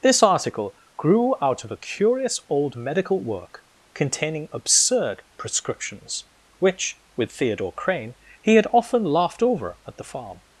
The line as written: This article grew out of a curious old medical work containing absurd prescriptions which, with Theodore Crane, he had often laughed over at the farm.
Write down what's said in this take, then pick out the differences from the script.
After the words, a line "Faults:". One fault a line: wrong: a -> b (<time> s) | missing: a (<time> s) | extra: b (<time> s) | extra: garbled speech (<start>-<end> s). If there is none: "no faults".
This article grew out of a curious old medical work containing absurd prescriptions which, with Theodore Crane, he had often laughed over at the farm.
Faults:
no faults